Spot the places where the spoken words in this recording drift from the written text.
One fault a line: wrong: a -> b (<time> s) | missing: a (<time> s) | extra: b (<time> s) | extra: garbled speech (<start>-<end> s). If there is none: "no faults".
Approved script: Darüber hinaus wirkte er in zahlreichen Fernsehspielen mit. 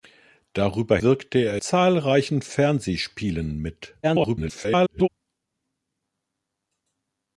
missing: hinaus (1.0 s)
missing: in (1.6 s)
extra: garbled speech (4.0-5.1 s)